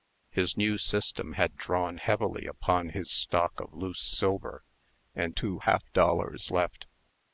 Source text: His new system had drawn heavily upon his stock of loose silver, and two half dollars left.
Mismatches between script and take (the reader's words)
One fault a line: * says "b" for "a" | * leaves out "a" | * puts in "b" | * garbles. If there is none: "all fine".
all fine